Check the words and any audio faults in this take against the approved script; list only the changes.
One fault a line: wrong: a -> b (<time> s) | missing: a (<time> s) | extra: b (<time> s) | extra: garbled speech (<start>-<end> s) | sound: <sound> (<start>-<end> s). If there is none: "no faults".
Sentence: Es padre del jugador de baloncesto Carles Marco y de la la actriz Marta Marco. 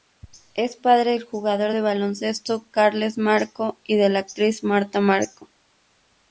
missing: la (4.2 s)